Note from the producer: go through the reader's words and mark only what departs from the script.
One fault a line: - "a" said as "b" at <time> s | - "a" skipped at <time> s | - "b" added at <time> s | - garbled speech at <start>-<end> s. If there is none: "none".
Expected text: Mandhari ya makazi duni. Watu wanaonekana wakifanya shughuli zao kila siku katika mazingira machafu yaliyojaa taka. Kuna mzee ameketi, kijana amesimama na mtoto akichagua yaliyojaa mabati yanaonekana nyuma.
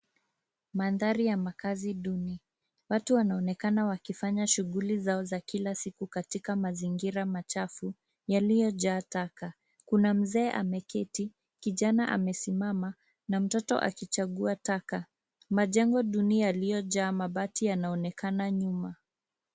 - "za" added at 5.2 s
- "taka Majengo duni" added at 14.6 s